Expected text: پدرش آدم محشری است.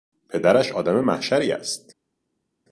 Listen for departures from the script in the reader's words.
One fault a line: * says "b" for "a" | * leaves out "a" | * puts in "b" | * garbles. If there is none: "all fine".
all fine